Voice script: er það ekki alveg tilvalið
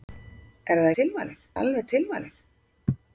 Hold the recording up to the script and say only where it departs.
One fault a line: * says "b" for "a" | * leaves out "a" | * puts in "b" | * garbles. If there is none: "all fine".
* says "tilvalið" for "ekki"